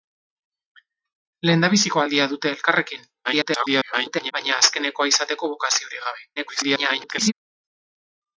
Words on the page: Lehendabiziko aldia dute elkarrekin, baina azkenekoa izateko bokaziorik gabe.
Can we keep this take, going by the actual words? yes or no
no